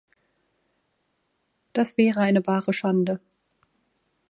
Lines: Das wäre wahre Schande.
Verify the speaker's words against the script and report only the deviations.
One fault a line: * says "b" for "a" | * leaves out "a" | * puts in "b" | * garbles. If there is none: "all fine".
* puts in "eine"